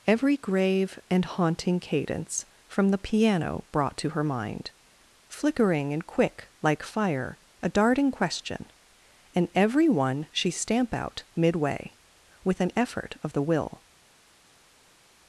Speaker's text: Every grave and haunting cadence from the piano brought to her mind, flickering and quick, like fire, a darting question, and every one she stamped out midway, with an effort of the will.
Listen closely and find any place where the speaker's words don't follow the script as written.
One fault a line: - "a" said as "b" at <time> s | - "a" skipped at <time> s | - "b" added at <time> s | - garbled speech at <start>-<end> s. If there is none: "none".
- "stamped" said as "stamp" at 10.5 s